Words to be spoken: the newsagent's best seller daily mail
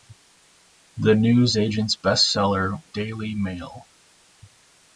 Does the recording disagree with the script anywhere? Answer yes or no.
no